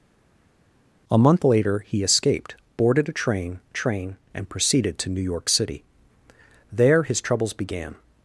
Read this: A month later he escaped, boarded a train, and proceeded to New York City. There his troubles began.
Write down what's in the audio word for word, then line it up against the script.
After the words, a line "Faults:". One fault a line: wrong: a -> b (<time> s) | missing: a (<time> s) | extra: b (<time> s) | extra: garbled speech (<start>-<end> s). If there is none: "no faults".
A month later he escaped, boarded a train train, and proceeded to New York City. There his troubles began.
Faults:
extra: train (3.8 s)